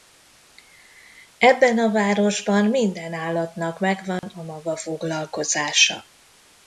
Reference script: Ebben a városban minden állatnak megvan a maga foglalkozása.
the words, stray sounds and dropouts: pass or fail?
fail